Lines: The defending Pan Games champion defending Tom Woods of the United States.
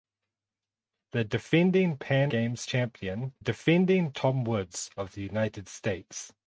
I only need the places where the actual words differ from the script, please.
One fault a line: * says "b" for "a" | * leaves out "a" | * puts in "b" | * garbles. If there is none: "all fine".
all fine